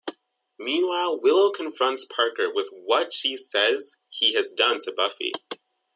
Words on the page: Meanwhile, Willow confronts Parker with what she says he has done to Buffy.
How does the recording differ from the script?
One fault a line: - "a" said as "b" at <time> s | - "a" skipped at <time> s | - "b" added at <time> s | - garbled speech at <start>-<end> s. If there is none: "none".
none